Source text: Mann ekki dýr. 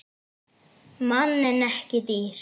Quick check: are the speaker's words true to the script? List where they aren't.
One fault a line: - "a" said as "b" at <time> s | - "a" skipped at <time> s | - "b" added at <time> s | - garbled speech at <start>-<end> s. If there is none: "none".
- "en" added at 1.5 s